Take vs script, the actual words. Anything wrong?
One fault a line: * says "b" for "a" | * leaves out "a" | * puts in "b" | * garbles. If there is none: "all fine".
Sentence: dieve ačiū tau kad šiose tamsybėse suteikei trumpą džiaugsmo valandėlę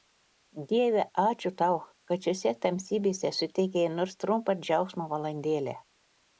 * puts in "nors"